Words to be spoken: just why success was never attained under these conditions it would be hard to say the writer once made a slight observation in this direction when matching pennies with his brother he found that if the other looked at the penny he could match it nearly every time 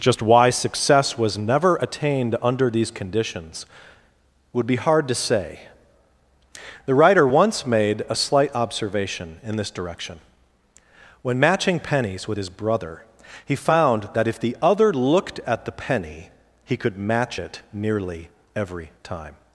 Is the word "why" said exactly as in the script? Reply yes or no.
yes